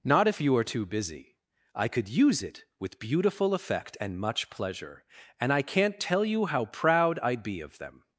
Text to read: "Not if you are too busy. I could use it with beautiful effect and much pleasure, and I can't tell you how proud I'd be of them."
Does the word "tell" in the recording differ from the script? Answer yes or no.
no